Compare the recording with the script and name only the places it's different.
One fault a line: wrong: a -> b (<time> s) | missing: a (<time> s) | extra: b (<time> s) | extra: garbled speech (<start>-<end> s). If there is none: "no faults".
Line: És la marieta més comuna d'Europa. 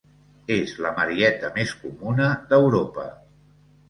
no faults